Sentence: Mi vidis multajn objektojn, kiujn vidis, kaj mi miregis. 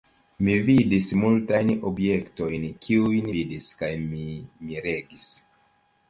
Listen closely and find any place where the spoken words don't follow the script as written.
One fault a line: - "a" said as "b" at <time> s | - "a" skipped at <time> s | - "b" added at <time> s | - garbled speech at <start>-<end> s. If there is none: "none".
none